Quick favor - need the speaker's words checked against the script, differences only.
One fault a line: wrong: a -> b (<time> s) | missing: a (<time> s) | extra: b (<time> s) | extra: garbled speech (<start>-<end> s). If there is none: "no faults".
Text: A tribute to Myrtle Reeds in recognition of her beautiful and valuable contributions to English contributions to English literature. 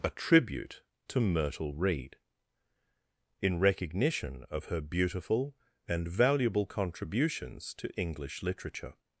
wrong: Reeds -> Reed (1.8 s)
missing: contributions to English (8.4 s)